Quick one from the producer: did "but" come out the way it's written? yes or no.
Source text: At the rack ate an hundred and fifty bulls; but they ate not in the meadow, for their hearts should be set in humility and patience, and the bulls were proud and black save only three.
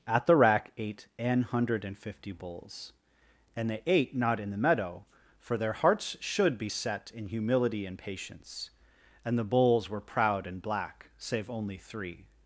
no